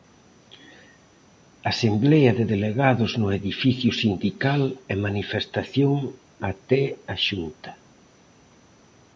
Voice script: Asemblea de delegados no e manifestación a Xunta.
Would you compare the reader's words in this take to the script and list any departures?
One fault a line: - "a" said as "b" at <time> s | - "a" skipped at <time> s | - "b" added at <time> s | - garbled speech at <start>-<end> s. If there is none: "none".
- "edificio sindical" added at 3.4 s
- "até" added at 6.5 s